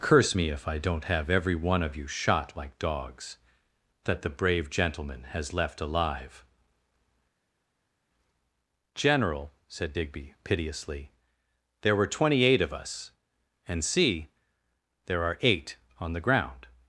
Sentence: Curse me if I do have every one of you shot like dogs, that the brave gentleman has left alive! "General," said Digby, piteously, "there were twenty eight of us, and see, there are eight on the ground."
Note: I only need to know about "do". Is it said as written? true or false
false